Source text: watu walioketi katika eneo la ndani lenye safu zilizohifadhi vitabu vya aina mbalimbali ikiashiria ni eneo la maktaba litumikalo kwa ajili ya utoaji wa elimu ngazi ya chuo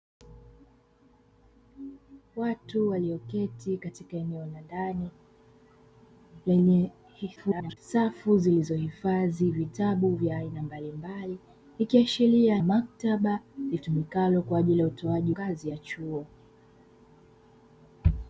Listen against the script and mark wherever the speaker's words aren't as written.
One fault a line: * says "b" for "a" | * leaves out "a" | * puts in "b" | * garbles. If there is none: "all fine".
* garbles
* leaves out "ni eneo la"
* leaves out "wa elimu"